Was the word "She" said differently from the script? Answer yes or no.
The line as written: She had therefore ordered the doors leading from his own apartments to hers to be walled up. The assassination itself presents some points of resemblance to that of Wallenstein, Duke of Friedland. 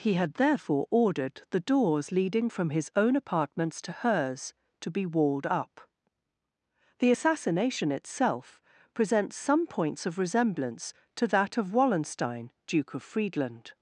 yes